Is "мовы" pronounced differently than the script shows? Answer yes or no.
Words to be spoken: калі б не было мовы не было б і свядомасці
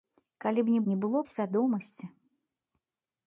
yes